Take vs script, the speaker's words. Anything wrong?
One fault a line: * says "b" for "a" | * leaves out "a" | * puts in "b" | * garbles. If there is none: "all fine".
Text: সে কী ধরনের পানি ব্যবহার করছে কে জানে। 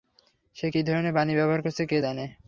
all fine